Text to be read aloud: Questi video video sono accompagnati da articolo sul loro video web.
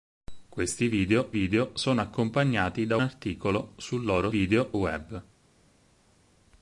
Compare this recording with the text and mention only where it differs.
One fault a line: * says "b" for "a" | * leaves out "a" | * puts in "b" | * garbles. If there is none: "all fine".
all fine